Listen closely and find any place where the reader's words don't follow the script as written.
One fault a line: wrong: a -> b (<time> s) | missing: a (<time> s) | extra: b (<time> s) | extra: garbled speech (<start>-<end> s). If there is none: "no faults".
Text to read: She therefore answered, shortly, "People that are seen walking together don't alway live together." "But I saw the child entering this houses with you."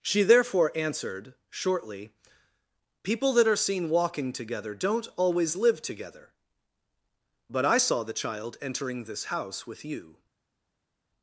wrong: alway -> always (5.2 s)
wrong: houses -> house (9.3 s)